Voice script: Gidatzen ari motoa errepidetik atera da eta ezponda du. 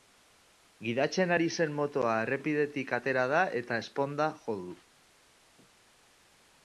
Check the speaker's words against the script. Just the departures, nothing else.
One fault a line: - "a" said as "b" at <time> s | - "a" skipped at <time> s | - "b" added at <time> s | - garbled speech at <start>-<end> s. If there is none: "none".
- "zen" added at 1.6 s
- "jo" added at 4.5 s